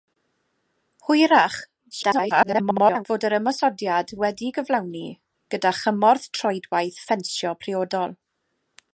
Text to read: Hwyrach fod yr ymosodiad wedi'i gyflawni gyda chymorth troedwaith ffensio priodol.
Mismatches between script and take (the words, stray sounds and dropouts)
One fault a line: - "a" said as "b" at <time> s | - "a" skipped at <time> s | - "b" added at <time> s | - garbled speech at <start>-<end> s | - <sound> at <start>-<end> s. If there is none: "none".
- garbled speech at 1.9-3.0 s